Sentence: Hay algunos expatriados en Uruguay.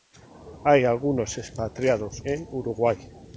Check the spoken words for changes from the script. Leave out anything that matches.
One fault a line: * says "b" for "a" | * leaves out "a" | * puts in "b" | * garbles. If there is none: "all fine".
all fine